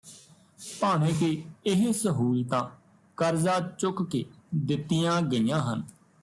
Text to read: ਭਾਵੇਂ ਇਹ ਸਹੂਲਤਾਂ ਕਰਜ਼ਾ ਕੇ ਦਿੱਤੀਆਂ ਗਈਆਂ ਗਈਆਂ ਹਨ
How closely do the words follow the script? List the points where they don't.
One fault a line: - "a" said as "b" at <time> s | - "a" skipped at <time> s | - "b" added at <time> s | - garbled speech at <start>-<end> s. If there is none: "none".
- "ਕਿ" added at 1.1 s
- "ਚੁੱਕ" added at 3.6 s
- "ਗਈਆਂ" skipped at 5.6 s